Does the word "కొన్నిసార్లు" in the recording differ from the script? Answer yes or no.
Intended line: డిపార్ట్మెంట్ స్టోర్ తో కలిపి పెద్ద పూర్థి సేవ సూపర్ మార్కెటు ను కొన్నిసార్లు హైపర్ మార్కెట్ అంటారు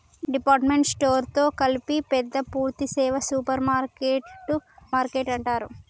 yes